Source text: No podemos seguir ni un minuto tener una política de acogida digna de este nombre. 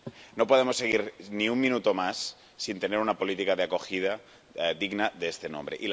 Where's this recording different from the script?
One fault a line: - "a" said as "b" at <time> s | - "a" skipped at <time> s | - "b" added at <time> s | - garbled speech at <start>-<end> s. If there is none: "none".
- "más sin" added at 1.9 s